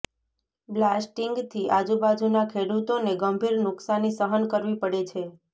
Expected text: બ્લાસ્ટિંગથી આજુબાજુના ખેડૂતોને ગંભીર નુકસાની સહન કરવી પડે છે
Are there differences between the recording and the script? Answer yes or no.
no